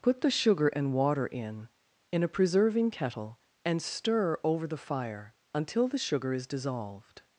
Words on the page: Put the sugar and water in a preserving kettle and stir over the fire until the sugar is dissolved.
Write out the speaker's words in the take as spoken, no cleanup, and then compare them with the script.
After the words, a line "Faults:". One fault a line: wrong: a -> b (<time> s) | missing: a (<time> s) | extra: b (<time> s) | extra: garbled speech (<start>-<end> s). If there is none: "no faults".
Put the sugar and water in in a preserving kettle and stir over the fire until the sugar is dissolved.
Faults:
extra: in (2.1 s)